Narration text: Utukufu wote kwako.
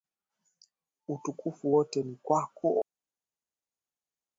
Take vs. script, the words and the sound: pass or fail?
fail